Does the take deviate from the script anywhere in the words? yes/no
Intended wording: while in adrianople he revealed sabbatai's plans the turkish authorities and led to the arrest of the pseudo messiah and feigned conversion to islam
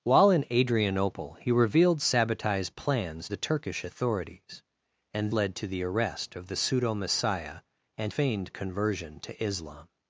no